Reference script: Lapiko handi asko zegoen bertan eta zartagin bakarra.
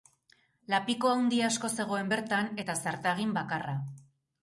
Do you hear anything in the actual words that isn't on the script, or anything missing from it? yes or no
no